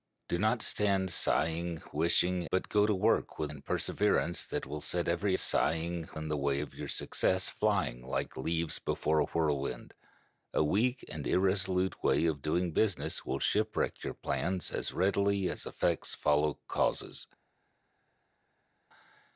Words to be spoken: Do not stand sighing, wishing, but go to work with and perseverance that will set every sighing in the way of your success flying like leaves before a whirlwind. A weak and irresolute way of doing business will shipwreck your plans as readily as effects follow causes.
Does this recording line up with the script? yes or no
yes